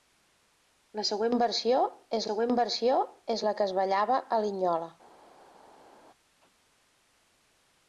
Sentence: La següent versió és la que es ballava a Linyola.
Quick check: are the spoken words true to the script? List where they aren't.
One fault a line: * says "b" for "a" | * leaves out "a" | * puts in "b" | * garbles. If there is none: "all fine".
* puts in "següent versió és"